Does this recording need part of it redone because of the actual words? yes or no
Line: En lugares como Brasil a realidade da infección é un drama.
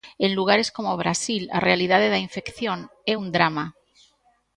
no